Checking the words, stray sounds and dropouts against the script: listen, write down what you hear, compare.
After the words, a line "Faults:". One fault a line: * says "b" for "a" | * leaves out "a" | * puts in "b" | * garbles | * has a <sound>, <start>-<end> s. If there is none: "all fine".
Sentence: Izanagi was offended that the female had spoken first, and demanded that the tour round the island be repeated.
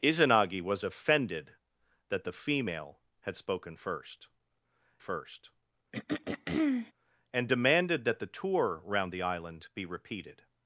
Izanagi was offended that the female had spoken first first, and demanded that the tour round the island be repeated.
Faults:
* puts in "first"
* has a throat clearing, 5.9-6.9 s